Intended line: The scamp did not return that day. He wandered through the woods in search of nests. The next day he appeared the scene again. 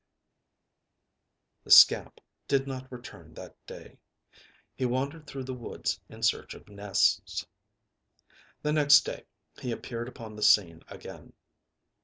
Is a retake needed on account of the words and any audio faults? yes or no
yes